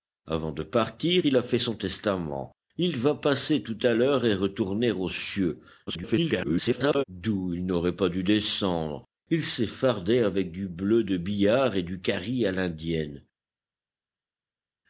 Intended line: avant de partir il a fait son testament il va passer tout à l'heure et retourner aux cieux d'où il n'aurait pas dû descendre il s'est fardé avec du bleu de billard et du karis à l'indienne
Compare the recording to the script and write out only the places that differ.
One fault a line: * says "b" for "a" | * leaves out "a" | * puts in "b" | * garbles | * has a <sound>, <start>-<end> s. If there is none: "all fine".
* garbles